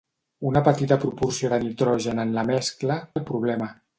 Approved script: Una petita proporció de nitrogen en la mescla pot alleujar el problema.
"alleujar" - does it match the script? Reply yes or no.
no